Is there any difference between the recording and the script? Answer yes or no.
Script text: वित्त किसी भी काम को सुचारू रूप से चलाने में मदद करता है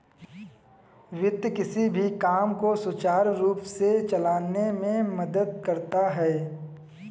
no